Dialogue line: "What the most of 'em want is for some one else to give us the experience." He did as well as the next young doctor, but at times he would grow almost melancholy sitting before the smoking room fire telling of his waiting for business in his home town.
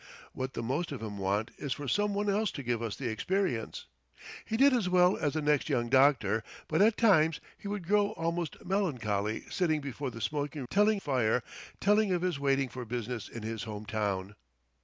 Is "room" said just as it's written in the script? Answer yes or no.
no